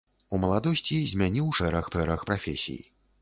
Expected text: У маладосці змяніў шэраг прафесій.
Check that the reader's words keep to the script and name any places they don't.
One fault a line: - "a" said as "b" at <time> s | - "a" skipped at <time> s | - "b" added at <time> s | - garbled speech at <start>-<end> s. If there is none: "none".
- "шэраг" added at 1.9 s